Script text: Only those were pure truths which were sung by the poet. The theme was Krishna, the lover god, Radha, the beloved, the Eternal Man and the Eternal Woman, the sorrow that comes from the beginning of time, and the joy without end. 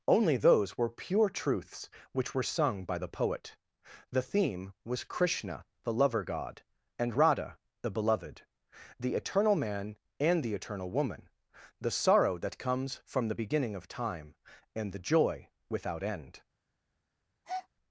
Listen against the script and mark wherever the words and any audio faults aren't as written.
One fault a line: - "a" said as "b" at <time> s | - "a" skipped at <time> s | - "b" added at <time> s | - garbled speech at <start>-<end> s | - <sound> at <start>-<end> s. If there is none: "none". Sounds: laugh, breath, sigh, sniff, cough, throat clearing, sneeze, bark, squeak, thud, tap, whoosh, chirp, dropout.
- "and" added at 7.0 s
- breath at 17.4-17.7 s